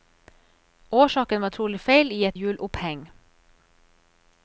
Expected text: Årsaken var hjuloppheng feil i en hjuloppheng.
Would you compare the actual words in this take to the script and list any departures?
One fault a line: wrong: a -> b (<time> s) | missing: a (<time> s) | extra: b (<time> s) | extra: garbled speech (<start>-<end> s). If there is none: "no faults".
wrong: hjuloppheng -> trolig (1.5 s)
wrong: en -> et (2.2 s)